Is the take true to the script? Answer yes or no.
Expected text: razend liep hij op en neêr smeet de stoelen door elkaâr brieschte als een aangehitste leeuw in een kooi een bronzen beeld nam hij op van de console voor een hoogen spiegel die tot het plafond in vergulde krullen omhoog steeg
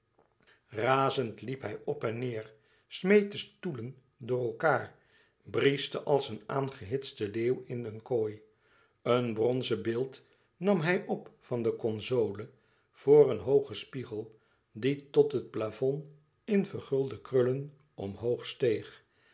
yes